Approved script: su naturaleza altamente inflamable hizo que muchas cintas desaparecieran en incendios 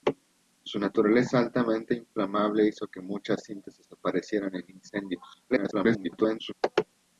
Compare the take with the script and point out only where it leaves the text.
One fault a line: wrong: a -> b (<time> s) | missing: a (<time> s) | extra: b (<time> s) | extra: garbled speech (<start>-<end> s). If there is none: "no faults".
extra: garbled speech (5.5-6.5 s)